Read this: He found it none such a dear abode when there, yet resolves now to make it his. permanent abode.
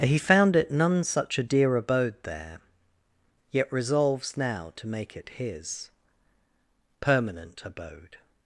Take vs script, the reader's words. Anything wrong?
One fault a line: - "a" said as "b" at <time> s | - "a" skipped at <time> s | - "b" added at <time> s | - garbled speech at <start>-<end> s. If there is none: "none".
- "when" skipped at 2.1 s